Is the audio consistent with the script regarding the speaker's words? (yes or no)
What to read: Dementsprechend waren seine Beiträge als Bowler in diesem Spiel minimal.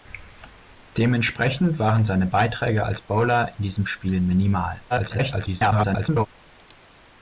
no